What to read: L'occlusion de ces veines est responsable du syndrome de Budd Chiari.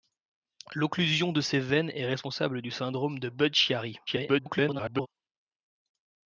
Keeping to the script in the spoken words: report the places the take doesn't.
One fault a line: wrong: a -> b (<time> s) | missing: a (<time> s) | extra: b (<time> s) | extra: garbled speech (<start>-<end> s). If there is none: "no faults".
extra: garbled speech (4.1-5.1 s)